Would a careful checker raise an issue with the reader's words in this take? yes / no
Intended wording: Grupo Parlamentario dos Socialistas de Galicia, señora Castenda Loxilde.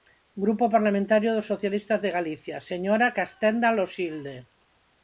no